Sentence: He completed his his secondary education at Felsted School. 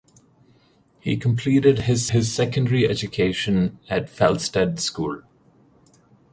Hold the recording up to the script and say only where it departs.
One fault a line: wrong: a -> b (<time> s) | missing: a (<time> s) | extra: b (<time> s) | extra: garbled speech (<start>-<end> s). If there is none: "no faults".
no faults